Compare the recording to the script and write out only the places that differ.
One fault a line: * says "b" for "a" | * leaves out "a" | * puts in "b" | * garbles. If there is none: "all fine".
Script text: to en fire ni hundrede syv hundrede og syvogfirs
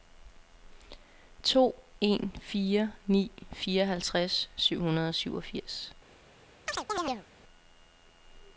* says "fireoghalvtreds" for "hundrede"